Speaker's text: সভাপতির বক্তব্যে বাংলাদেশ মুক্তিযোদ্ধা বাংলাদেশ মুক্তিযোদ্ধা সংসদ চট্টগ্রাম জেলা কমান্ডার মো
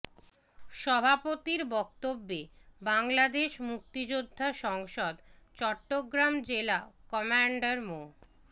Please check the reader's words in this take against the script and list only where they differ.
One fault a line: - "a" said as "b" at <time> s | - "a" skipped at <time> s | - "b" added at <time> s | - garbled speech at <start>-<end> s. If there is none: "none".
- "বাংলাদেশ মুক্তিযোদ্ধা" skipped at 4.5 s